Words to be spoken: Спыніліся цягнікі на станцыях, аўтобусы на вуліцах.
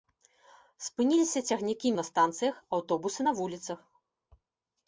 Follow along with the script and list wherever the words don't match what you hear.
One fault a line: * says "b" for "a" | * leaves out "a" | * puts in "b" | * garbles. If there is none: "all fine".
all fine